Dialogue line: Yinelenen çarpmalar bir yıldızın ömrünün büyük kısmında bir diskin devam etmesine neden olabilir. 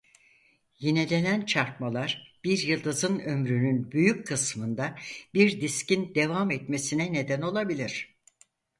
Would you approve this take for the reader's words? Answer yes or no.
yes